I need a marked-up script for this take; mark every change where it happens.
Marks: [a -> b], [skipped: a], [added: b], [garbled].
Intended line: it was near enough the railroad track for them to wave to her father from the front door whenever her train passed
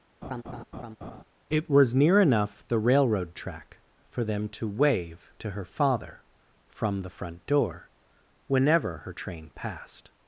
it was near enough the railroad track for them to wave to her father from the front door whenever her train passed